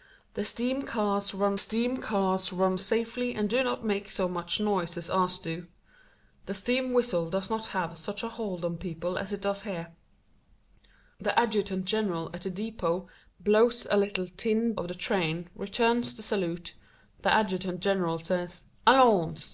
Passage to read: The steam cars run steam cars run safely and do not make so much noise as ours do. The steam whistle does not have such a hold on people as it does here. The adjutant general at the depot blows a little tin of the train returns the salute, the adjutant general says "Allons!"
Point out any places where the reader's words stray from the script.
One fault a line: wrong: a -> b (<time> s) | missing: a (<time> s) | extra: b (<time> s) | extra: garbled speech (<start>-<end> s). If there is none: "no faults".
no faults